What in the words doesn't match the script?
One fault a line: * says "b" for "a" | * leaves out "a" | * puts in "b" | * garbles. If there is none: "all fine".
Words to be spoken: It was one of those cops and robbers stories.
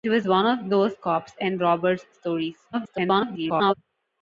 * garbles